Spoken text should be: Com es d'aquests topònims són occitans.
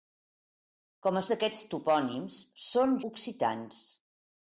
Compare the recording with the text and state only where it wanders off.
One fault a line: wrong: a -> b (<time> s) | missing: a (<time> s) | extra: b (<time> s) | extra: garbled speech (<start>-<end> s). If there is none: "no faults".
no faults